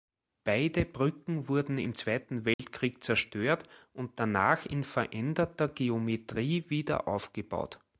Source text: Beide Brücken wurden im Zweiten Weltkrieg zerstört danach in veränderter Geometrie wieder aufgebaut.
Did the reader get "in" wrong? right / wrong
right